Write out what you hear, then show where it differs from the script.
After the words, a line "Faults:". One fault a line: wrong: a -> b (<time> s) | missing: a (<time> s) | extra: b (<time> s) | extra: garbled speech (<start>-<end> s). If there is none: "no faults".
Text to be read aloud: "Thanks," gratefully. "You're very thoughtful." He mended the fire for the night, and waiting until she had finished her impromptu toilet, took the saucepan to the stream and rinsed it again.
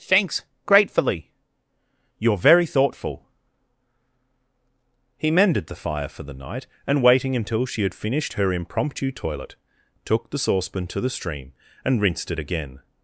"Thanks," gratefully. "You're very thoughtful." He mended the fire for the night, and waiting until she had finished her impromptu toilet, took the saucepan to the stream and rinsed it again.
Faults:
no faults